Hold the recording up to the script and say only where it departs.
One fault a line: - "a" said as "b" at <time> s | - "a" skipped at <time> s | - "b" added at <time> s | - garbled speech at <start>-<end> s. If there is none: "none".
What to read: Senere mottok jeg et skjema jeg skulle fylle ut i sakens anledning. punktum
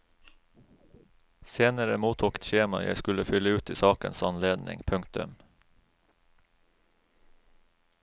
- "jeg" skipped at 2.4 s